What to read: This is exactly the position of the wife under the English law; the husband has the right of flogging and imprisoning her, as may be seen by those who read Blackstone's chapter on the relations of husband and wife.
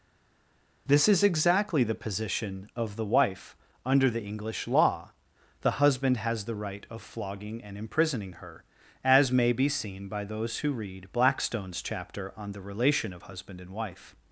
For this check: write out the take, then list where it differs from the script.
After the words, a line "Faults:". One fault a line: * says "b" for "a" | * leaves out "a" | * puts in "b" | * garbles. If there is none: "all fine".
This is exactly the position of the wife under the English law; the husband has the right of flogging and imprisoning her, as may be seen by those who read Blackstone's chapter on the relation of husband and wife.
Faults:
* says "relation" for "relations"